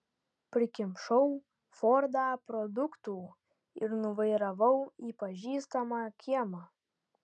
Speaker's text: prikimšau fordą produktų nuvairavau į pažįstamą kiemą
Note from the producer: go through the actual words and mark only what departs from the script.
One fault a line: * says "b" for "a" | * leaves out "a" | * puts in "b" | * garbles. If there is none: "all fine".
* puts in "ir"